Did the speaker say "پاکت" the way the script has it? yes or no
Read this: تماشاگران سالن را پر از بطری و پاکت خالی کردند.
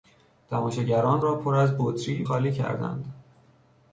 no